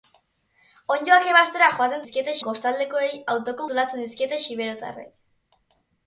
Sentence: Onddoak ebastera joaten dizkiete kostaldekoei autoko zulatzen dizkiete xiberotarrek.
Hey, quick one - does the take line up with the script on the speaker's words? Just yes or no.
yes